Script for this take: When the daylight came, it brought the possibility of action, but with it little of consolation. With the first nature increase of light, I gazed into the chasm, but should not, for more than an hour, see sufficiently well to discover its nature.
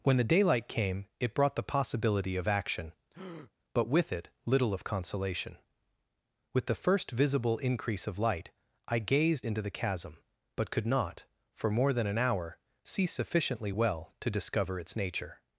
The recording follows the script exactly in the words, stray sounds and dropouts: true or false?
false